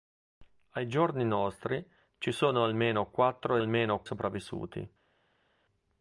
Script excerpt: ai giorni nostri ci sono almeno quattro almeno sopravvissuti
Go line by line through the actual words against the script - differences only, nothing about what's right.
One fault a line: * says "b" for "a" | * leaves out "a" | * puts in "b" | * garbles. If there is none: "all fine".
all fine